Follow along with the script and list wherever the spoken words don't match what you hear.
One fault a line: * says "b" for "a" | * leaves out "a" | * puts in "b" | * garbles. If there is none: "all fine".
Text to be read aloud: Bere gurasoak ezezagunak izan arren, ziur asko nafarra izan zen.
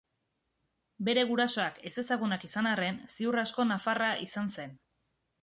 all fine